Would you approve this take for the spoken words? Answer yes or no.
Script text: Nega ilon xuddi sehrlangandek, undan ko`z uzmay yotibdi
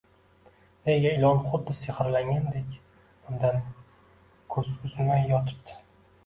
yes